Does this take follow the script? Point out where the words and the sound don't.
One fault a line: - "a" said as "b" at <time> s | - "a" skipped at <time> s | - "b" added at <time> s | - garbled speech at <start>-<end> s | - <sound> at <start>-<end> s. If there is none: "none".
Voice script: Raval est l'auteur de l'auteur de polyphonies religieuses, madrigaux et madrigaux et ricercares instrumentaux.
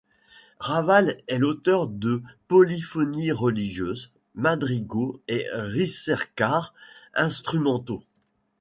- "l'auteur de" skipped at 2.2 s
- "madrigaux et" skipped at 5.5 s